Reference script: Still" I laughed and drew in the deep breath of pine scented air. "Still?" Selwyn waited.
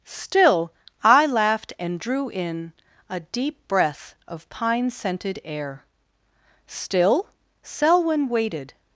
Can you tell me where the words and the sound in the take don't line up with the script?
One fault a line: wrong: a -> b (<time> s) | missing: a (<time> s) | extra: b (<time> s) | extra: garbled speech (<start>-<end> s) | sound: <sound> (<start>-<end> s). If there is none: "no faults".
wrong: the -> a (3.1 s)